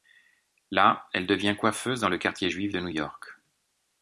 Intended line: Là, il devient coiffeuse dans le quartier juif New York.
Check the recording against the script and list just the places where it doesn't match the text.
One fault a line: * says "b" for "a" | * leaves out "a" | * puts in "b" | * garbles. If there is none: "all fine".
* says "elle" for "il"
* puts in "de"